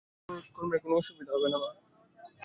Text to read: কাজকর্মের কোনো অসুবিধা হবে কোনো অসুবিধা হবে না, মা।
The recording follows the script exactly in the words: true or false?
false